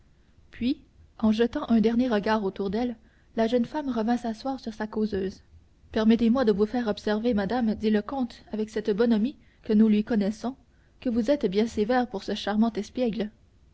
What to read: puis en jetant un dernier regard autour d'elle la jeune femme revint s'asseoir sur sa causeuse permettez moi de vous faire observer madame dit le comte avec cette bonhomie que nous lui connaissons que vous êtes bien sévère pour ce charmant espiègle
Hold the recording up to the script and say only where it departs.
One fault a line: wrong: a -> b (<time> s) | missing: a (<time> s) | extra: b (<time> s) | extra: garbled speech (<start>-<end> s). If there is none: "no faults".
no faults